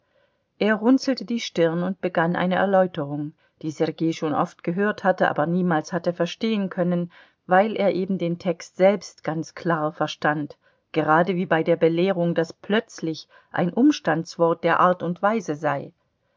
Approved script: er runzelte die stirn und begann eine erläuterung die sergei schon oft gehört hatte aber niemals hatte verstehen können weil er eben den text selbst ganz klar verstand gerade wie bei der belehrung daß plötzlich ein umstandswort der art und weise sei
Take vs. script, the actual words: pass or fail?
pass